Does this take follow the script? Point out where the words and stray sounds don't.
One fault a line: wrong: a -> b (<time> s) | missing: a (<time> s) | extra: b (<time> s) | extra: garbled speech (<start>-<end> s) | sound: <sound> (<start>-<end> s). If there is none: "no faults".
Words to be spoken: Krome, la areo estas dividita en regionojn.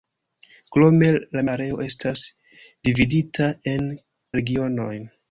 no faults